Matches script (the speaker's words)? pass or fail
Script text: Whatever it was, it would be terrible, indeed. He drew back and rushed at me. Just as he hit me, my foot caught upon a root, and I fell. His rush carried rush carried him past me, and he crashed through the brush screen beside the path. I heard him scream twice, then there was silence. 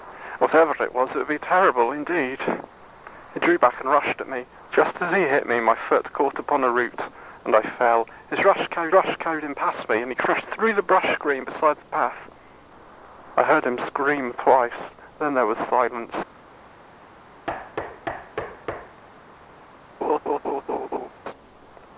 pass